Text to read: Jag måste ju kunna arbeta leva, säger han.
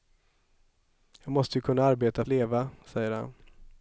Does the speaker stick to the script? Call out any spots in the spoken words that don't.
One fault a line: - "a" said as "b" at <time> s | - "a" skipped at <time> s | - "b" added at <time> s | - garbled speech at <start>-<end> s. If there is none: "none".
none